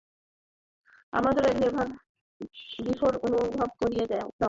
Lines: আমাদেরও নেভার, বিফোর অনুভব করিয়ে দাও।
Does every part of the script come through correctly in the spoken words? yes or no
yes